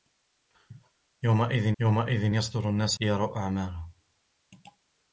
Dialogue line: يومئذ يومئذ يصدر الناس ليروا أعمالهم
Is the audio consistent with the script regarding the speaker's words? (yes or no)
yes